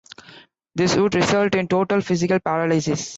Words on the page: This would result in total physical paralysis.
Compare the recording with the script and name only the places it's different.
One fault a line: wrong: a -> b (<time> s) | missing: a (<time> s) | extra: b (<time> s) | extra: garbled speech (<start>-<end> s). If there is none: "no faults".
no faults